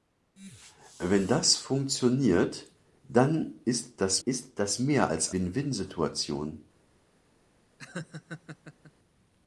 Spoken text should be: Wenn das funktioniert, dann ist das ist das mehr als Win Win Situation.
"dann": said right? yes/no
yes